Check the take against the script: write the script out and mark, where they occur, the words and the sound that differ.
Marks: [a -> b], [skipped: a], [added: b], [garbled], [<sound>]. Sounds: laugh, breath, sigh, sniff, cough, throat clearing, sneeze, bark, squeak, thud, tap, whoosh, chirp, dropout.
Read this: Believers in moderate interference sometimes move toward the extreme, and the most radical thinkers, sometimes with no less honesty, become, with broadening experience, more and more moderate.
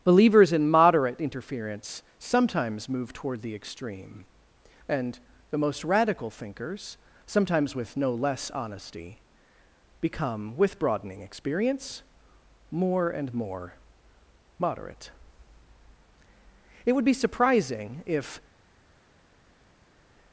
Believers in moderate interference sometimes move toward the extreme, and the most radical thinkers, sometimes with no less honesty, become, with broadening experience, more and more moderate. [added: It would be surprising if]